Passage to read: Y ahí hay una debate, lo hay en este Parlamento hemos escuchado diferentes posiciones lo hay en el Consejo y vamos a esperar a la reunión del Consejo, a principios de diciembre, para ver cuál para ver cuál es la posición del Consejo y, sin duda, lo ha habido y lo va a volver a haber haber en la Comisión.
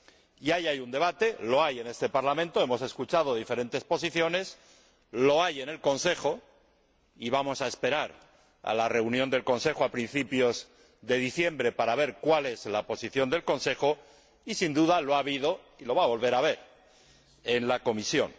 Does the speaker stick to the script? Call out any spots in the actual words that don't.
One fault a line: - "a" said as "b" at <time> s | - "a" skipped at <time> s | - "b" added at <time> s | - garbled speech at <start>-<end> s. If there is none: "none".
- "una" said as "un" at 0.8 s
- "para ver cuál" skipped at 12.5 s
- "haber" skipped at 16.6 s